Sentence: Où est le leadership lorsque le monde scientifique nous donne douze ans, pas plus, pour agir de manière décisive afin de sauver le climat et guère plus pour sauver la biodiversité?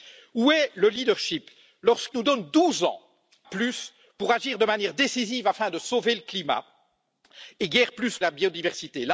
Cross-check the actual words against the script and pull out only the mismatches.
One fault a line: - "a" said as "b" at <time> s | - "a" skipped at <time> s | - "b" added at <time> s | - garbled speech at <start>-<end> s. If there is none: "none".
- "le monde scientifique" skipped at 2.1 s
- "pas" skipped at 3.0 s
- "pour sauver" skipped at 8.2 s